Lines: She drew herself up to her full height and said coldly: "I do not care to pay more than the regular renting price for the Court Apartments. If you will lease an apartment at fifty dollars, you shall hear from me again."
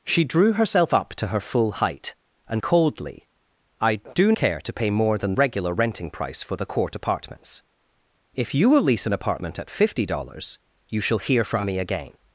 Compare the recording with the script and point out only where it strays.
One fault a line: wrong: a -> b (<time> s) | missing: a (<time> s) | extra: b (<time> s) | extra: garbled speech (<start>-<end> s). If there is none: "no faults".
missing: said (2.6 s)
missing: not (4.3 s)
missing: the (5.3 s)